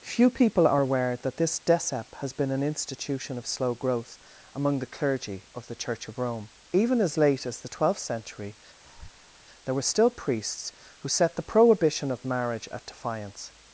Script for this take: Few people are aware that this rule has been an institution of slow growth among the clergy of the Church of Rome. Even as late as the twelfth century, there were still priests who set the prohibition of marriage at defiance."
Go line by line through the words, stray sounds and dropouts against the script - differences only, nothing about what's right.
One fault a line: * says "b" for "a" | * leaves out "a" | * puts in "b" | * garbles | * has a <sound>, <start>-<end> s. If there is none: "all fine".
* says "decep" for "rule"
* has a breath, 8.8-9.4 s